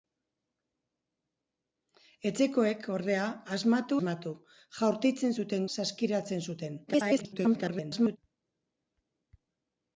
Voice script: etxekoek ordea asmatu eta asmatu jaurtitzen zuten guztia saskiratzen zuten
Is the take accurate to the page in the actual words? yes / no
no